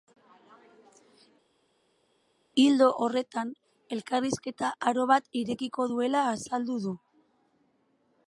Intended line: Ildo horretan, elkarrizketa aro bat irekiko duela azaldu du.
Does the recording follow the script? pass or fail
pass